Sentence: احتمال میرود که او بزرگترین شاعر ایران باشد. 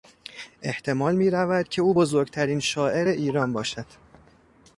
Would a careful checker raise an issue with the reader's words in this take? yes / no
no